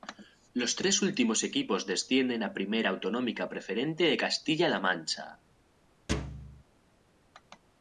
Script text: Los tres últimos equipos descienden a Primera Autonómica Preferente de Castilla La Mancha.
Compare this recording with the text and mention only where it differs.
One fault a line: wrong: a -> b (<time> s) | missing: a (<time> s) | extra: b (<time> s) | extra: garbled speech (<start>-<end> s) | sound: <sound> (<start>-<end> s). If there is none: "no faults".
sound: thud (6.1-6.6 s)